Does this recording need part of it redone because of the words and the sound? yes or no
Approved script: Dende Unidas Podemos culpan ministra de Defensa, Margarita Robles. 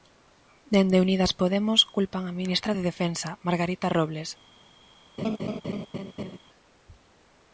yes